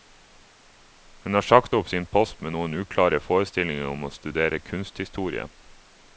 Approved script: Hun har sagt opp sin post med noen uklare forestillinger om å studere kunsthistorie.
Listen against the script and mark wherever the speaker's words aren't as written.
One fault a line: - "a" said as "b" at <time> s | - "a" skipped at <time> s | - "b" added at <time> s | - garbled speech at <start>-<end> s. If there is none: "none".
none